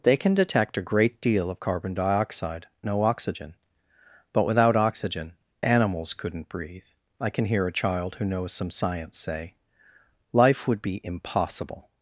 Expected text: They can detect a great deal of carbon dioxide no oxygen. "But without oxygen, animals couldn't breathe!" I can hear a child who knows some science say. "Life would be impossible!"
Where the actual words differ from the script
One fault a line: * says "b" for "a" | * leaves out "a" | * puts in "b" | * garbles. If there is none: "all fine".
all fine